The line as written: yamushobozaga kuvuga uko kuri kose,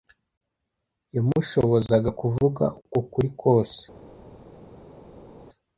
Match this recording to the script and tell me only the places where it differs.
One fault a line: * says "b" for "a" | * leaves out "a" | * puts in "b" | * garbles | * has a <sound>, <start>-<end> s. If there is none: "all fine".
all fine